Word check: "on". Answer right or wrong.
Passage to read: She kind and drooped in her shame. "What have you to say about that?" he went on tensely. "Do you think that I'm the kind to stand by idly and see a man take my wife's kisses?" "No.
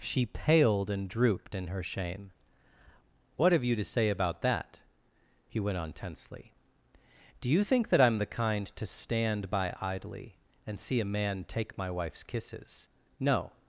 right